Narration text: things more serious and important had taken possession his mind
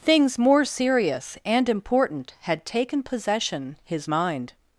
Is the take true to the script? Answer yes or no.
yes